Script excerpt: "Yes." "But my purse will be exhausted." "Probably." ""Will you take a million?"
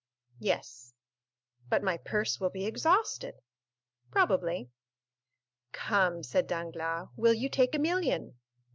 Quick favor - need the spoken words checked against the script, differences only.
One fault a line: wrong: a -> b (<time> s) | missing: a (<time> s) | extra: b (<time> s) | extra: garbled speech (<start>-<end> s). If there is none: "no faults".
extra: Come said Danglars (5.7 s)